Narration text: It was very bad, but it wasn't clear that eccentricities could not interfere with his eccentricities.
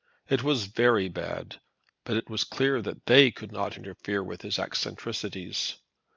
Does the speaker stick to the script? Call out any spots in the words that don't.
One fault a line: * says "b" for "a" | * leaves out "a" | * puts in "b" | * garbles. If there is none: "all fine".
* says "was" for "wasn't"
* says "they" for "eccentricities"